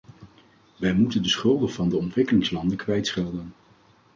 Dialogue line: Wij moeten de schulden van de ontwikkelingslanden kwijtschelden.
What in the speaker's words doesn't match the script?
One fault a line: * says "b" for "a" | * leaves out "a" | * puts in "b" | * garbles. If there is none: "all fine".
all fine